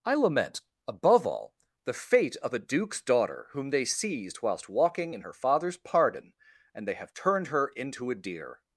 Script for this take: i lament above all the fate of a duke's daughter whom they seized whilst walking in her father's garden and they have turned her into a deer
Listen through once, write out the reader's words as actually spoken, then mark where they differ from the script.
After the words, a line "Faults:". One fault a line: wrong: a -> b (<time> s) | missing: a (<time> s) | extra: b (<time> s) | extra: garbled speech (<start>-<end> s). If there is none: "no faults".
i lament above all the fate of a duke's daughter whom they seized whilst walking in her father's pardon and they have turned her into a deer
Faults:
wrong: garden -> pardon (5.8 s)